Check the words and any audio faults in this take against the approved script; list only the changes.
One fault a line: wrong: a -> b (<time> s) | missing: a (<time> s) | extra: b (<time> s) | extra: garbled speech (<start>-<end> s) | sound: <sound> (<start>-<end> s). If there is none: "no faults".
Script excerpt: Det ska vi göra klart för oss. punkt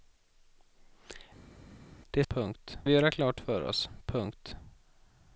wrong: ska -> punkt (2.3 s)